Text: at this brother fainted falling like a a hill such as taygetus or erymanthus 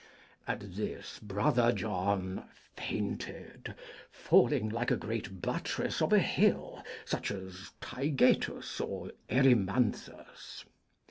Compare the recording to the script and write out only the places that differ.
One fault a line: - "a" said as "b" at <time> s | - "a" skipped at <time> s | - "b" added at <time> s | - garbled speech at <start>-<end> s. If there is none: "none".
- "john" added at 1.7 s
- "great buttress of" added at 5.0 s